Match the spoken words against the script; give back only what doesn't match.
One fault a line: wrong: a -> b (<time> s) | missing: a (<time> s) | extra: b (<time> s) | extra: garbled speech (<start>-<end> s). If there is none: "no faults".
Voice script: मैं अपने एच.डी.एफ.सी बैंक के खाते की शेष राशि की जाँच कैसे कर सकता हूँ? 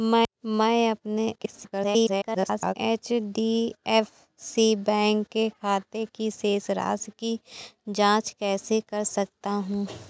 extra: garbled speech (1.4-2.7 s)